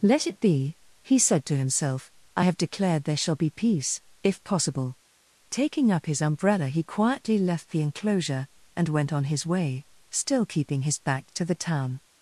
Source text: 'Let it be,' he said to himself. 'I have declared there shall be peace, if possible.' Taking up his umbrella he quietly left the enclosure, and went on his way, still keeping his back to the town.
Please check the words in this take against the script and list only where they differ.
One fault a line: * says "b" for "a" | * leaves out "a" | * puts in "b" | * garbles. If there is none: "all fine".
all fine